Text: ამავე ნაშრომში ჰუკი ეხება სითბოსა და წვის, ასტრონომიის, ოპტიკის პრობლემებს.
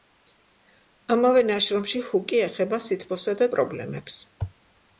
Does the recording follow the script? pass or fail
fail